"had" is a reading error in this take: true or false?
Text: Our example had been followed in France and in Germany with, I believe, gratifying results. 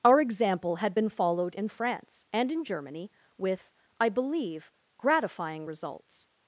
false